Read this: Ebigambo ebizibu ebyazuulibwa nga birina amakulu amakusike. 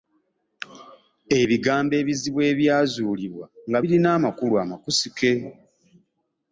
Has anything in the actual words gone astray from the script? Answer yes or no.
no